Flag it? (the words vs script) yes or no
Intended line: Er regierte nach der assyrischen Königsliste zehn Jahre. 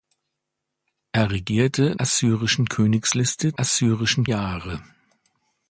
yes